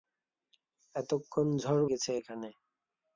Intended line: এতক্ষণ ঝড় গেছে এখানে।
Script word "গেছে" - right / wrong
right